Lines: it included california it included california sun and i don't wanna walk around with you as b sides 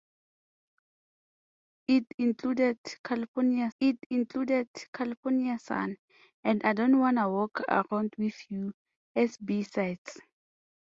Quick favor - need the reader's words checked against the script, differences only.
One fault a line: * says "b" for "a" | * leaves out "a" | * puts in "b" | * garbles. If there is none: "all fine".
all fine